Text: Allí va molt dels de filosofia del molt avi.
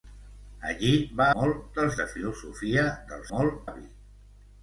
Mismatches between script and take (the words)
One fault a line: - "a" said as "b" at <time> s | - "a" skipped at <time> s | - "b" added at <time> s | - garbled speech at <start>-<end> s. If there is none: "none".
none